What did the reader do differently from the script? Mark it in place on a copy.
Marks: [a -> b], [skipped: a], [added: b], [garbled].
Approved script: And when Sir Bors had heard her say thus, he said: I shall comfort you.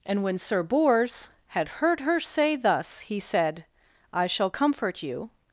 And when Sir Bors had heard her say thus, he said: I shall comfort you.